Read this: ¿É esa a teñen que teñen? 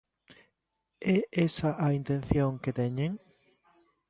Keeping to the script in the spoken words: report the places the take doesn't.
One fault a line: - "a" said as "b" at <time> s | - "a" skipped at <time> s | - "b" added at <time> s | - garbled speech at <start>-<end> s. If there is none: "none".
- "teñen" said as "intención" at 2.0 s